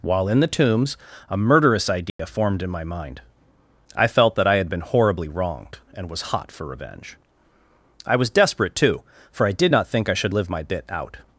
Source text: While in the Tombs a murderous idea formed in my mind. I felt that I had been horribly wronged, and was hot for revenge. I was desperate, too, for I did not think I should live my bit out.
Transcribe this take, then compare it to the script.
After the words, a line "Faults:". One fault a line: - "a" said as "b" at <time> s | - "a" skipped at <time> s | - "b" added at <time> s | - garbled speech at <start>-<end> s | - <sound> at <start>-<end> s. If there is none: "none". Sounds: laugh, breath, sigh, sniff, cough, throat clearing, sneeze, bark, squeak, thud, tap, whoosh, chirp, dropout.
While in the Tombs a murderous idea formed in my mind. I felt that I had been horribly wronged, and was hot for revenge. I was desperate, too, for I did not think I should live my bit out.
Faults:
- dropout at 2.1-2.2 s